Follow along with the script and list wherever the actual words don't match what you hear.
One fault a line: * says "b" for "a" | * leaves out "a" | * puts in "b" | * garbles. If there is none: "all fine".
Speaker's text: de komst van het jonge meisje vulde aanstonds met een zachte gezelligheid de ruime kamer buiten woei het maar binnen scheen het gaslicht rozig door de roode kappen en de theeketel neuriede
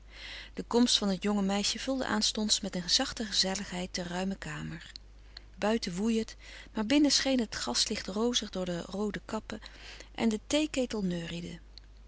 all fine